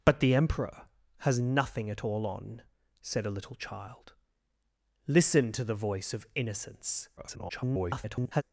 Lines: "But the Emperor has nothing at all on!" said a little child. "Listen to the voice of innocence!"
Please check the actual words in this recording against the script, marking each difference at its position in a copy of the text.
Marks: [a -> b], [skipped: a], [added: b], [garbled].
"But the Emperor has nothing at all on!" said a little child. "Listen to the voice of innocence!" [garbled]